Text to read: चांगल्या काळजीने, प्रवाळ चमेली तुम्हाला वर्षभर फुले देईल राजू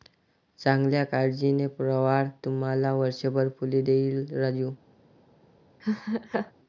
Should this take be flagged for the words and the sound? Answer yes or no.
yes